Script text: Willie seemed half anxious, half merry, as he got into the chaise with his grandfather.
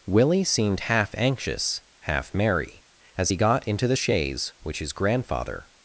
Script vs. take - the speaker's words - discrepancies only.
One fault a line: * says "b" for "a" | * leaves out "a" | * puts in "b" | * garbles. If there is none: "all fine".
* says "which" for "with"